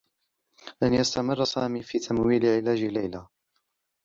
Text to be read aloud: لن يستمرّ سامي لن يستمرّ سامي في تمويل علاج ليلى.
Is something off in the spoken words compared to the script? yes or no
yes